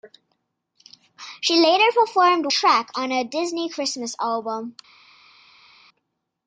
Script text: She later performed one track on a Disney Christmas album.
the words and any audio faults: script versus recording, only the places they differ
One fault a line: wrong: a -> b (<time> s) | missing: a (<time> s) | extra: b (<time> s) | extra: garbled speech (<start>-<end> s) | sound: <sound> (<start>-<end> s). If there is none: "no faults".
missing: one (2.5 s)